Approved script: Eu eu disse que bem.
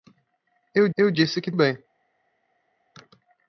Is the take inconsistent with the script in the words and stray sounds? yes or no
no